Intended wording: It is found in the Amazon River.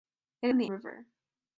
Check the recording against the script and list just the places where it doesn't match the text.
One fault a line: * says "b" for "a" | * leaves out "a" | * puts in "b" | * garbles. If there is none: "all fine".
* leaves out "is found"
* leaves out "Amazon"